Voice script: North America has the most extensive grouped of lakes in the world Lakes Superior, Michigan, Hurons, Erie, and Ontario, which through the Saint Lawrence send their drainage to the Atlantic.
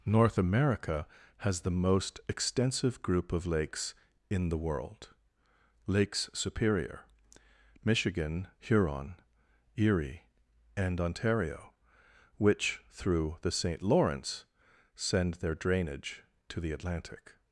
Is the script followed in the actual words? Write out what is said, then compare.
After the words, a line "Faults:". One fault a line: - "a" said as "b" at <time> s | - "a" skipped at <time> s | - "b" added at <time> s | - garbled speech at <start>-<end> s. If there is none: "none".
North America has the most extensive group of lakes in the world Lakes Superior, Michigan, Huron, Erie, and Ontario, which through the Saint Lawrence send their drainage to the Atlantic.
Faults:
- "grouped" said as "group" at 3.0 s
- "Hurons" said as "Huron" at 8.6 s